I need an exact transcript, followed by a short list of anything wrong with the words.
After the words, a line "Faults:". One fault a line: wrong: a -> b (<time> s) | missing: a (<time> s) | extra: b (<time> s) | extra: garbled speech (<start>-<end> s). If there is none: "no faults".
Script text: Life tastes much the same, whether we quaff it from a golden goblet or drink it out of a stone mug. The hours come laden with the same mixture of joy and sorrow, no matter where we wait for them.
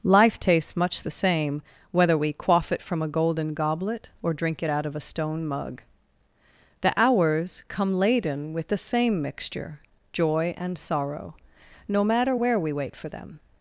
Life tastes much the same, whether we quaff it from a golden goblet or drink it out of a stone mug. The hours come laden with the same mixture joy and sorrow, no matter where we wait for them.
Faults:
missing: of (9.8 s)